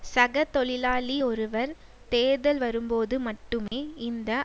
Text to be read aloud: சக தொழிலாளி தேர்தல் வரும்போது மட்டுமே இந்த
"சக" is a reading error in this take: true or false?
false